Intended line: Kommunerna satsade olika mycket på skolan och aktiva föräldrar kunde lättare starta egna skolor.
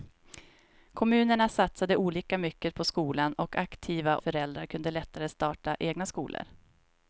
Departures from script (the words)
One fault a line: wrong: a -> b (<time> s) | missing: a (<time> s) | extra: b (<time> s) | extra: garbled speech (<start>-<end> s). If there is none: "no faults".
no faults